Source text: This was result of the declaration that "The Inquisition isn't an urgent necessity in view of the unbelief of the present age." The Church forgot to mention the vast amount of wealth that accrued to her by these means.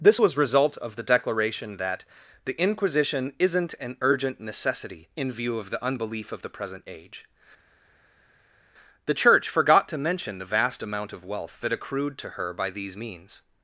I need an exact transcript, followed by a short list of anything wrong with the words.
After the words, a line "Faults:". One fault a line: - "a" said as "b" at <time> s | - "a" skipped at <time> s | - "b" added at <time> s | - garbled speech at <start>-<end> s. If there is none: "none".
This was result of the declaration that "The Inquisition isn't an urgent necessity in view of the unbelief of the present age." The Church forgot to mention the vast amount of wealth that accrued to her by these means.
Faults:
none